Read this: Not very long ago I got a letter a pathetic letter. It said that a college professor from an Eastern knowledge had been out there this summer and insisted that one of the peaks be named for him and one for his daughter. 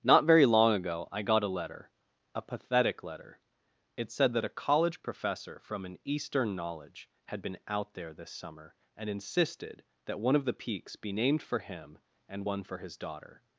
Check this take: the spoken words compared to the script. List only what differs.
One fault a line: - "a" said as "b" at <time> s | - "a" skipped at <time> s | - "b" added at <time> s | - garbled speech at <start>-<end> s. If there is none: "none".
none